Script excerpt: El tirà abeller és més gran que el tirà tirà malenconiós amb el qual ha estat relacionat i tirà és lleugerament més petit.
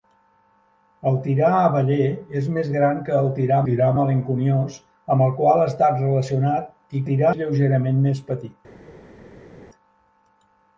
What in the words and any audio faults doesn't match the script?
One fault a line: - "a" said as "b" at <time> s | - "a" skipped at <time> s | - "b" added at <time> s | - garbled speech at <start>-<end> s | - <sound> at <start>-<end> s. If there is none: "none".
none